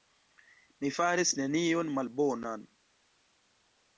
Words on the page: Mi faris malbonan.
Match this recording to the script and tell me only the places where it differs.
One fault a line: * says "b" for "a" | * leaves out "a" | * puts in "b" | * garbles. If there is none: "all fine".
* puts in "nenion"